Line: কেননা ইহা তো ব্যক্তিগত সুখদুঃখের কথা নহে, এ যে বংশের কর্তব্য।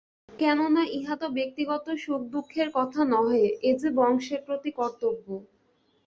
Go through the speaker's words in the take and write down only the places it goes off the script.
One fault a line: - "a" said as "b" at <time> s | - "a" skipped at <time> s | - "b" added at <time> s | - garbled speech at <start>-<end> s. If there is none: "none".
- "প্রতি" added at 4.5 s